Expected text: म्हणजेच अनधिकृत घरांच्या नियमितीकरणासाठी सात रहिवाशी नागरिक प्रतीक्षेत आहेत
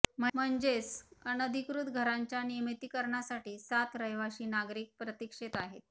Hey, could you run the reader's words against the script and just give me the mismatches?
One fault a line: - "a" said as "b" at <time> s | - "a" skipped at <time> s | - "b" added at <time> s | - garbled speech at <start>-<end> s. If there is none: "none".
none